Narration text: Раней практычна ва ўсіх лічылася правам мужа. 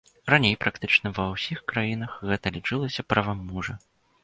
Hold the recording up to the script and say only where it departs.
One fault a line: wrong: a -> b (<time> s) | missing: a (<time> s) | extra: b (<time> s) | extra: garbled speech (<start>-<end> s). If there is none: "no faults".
extra: краінах гэта (1.7 s)